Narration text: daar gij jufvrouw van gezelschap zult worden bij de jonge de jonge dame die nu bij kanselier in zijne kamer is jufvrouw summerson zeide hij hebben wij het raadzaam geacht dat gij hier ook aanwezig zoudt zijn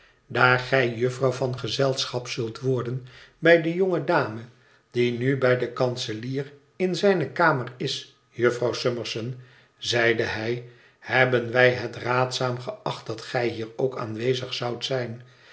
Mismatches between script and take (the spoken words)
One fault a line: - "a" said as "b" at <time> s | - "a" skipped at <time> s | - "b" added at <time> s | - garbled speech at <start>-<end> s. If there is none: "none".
- "de jonge" skipped at 4.0 s
- "den" added at 5.6 s